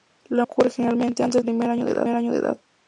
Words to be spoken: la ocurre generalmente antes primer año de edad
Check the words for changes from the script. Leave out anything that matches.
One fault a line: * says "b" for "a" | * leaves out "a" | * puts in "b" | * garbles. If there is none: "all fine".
all fine